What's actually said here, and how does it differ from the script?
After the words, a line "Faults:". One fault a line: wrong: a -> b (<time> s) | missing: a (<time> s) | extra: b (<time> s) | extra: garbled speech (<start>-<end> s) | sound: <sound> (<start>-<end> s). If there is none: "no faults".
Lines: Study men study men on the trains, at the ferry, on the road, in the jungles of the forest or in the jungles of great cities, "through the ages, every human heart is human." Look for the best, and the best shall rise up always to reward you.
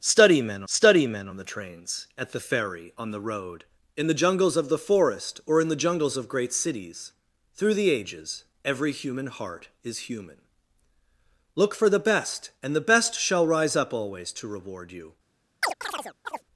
Study men study men on the trains, at the ferry, on the road, in the jungles of the forest or in the jungles of great cities, "through the ages, every human heart is human." Look for the best, and the best shall rise up always to reward you.
Faults:
sound: chirp (15.6-16.4 s)